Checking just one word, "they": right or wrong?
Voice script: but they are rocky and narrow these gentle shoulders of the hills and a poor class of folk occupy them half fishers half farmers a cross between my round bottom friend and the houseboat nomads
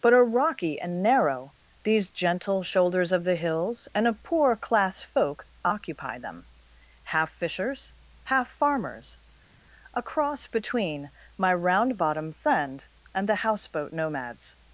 wrong